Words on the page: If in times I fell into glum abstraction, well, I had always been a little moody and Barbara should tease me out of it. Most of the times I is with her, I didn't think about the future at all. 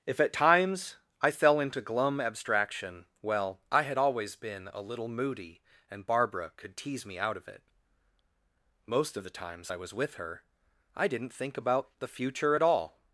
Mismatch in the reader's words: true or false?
true